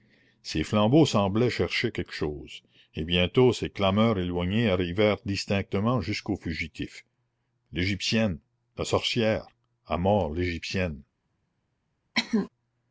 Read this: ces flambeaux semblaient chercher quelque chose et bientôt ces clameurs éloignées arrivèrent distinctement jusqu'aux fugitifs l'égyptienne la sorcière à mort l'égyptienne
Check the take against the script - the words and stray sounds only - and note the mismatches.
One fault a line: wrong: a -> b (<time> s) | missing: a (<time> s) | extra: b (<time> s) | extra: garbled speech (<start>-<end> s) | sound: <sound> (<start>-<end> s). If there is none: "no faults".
sound: cough (12.1-12.5 s)